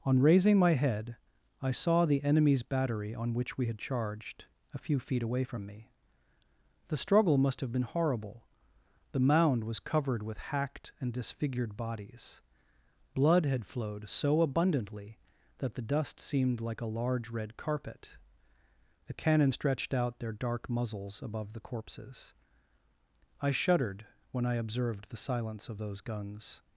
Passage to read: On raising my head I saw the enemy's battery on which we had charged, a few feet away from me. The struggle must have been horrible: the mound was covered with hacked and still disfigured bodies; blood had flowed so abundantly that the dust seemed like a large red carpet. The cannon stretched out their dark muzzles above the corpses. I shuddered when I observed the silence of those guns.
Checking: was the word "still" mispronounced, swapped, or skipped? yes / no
yes